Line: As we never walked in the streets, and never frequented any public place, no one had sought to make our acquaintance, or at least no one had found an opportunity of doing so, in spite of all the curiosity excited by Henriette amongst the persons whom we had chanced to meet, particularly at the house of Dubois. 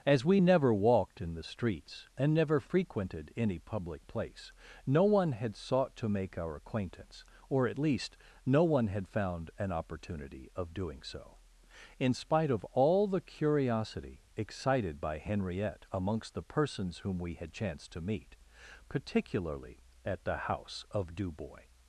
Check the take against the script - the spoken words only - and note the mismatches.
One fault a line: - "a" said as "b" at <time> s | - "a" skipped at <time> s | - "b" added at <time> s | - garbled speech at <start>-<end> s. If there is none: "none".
none